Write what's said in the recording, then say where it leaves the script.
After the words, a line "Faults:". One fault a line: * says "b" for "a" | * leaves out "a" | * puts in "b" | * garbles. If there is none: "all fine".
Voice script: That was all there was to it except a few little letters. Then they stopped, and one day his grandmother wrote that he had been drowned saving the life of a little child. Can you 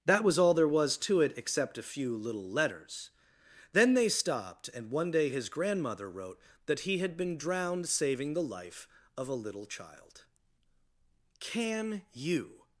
That was all there was to it except a few little letters. Then they stopped, and one day his grandmother wrote that he had been drowned saving the life of a little child. Can you
Faults:
all fine